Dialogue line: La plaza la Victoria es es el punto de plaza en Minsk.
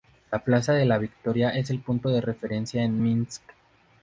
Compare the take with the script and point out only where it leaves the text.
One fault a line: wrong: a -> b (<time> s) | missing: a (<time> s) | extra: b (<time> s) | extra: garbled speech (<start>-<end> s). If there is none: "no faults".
extra: de (0.7 s)
missing: es (1.7 s)
wrong: plaza -> referencia (2.2 s)